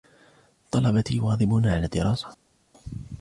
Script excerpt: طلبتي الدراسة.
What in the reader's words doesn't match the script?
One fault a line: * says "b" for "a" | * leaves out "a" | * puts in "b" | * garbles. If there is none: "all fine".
* puts in "يواظبون على"